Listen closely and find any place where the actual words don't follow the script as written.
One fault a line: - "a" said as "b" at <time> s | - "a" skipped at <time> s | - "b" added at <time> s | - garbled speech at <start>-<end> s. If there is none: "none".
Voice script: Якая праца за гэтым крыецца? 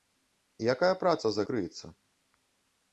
- "гэтым" skipped at 1.4 s